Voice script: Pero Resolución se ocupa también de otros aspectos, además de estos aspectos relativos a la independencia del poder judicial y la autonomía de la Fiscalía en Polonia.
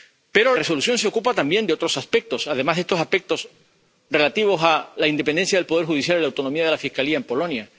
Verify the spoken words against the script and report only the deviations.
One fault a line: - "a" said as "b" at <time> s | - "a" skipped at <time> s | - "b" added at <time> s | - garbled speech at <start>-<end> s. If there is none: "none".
none